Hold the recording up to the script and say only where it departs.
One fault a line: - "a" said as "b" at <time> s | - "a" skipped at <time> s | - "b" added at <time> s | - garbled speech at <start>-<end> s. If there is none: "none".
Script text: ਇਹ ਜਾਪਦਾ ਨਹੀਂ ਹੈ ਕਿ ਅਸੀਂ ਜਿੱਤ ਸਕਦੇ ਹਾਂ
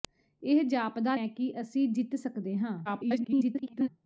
- "ਨਹੀਂ" skipped at 1.1 s
- garbled speech at 2.8-3.9 s